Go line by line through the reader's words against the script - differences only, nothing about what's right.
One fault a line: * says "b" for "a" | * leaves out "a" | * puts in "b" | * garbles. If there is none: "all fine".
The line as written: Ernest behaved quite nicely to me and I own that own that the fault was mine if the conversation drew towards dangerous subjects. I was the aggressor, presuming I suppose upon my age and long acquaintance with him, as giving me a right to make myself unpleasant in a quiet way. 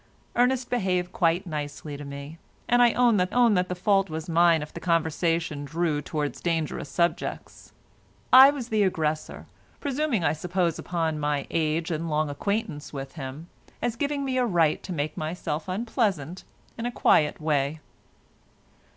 all fine